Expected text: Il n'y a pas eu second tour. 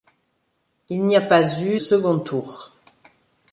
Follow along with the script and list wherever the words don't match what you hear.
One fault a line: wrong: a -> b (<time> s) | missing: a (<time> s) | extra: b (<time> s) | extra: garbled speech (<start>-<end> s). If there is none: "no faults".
no faults